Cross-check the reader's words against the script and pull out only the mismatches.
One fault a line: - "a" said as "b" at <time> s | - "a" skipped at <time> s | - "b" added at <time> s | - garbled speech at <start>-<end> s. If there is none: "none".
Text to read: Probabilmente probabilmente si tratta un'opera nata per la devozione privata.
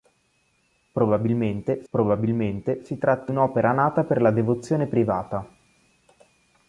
none